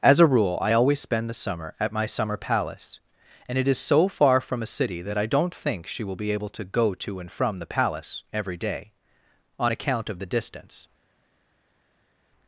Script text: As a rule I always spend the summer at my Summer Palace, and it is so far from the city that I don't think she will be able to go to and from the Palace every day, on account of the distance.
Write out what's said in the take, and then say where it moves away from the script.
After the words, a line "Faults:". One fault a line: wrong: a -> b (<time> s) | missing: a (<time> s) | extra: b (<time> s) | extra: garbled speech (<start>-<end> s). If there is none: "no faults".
As a rule I always spend the summer at my Summer Palace, and it is so far from a city that I don't think she will be able to go to and from the Palace every day, on account of the distance.
Faults:
wrong: the -> a (4.6 s)